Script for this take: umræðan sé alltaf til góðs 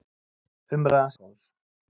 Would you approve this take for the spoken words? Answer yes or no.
no